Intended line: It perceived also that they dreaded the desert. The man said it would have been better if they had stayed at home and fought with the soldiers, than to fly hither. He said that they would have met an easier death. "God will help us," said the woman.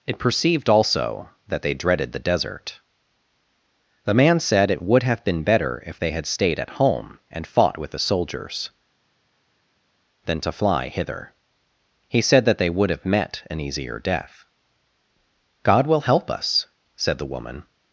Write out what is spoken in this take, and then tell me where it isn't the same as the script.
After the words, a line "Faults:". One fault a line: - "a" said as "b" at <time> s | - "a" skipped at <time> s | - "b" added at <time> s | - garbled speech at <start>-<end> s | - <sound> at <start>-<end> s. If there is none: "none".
It perceived also that they dreaded the desert. The man said it would have been better if they had stayed at home and fought with the soldiers, than to fly hither. He said that they would have met an easier death. "God will help us," said the woman.
Faults:
none